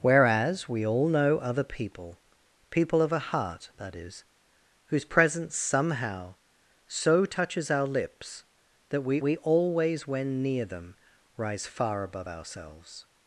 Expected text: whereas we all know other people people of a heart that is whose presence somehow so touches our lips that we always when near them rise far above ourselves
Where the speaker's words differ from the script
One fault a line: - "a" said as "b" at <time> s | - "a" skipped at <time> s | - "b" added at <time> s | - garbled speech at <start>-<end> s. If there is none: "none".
- "we" added at 9.2 s